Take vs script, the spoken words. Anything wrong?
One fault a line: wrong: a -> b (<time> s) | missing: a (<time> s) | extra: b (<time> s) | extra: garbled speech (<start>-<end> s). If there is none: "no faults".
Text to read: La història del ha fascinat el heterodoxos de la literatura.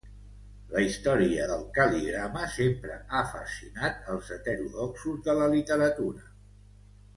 extra: cal·ligrama sempre (1.8 s)
wrong: el -> els (4.1 s)